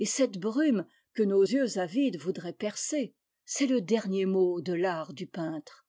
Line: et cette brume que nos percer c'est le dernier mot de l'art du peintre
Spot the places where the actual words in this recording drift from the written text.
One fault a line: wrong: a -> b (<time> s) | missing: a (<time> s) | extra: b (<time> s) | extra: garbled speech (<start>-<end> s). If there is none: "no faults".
extra: yeux avides voudraient (1.4 s)